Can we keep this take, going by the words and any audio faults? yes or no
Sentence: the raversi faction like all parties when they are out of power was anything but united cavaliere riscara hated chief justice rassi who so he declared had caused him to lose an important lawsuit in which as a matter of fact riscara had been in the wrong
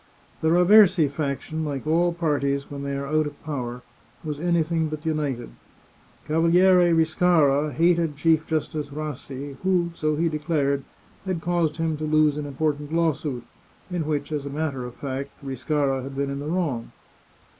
yes